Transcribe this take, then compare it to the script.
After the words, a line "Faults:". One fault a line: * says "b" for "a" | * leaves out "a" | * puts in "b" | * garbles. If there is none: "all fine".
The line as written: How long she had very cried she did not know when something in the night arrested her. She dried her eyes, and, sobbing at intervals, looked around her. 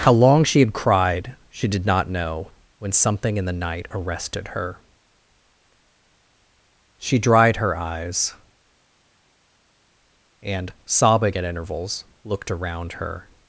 How long she had cried she did not know when something in the night arrested her. She dried her eyes, and, sobbing at intervals, looked around her.
Faults:
* leaves out "very"